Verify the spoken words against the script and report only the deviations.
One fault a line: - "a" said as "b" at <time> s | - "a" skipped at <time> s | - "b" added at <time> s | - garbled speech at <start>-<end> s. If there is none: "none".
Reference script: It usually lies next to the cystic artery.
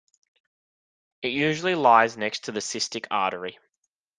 none